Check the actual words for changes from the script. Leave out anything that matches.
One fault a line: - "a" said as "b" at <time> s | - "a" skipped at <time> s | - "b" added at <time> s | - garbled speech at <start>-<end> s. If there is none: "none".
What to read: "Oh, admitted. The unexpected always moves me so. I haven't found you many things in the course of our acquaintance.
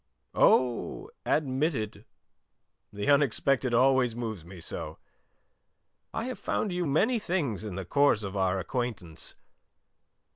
- "haven't" said as "have" at 6.3 s